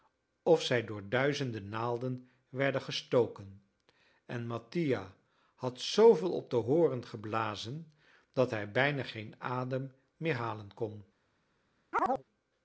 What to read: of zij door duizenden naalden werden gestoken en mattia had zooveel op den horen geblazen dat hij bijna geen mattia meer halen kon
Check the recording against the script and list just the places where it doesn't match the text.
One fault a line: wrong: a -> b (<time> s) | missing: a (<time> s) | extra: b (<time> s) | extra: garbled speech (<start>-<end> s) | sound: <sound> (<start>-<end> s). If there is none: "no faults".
wrong: mattia -> adem (9.4 s)
sound: chirp (11.9-12.2 s)